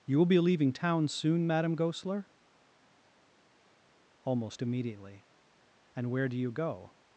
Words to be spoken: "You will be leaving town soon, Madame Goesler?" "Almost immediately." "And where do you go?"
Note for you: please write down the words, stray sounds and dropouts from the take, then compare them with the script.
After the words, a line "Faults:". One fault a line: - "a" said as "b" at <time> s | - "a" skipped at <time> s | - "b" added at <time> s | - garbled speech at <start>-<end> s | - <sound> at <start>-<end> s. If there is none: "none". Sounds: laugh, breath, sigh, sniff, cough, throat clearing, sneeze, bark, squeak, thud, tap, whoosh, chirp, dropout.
"You will be leaving town soon, Madame Goesler?" "Almost immediately." "And where do you go?"
Faults:
none